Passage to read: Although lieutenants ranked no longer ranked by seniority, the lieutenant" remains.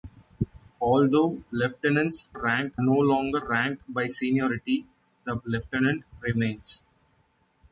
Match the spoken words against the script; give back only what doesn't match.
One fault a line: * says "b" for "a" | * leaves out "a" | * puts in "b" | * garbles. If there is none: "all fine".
all fine